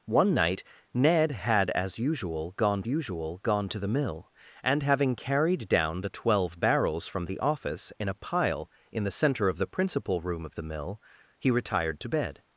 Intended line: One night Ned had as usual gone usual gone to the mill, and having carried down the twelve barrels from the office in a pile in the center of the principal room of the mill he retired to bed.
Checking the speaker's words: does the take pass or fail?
pass